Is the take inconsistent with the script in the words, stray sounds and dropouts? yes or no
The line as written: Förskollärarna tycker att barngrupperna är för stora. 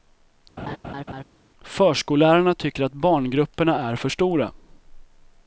yes